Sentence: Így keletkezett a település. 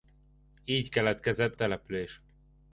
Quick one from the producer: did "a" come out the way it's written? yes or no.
no